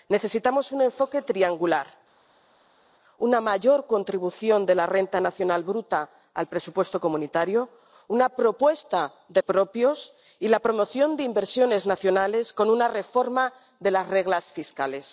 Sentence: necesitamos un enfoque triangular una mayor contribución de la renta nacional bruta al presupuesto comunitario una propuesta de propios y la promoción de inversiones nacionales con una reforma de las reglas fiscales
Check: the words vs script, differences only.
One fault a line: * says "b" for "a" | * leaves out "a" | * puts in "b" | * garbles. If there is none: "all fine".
all fine